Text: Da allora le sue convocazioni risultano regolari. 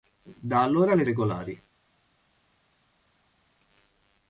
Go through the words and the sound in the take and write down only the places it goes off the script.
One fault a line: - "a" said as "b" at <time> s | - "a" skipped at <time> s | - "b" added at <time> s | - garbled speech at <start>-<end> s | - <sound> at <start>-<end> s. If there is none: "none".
- "sue convocazioni risultano" skipped at 1.0 s